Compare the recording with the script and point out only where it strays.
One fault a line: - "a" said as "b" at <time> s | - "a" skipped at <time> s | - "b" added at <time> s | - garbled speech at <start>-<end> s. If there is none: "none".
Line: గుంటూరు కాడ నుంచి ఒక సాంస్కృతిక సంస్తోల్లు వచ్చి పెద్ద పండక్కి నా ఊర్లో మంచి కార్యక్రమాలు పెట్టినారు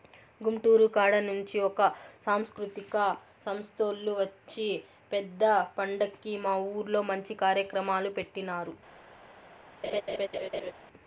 - "నా" said as "మా" at 6.4 s